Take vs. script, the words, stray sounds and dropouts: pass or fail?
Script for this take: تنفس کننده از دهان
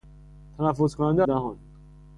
fail